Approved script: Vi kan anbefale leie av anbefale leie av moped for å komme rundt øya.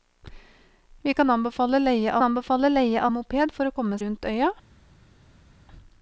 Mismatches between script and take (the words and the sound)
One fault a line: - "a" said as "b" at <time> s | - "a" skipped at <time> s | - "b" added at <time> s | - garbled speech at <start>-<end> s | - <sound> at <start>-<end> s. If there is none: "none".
none